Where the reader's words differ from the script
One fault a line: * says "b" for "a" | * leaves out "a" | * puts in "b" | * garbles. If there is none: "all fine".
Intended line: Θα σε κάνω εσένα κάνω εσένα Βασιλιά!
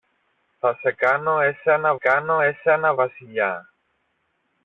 all fine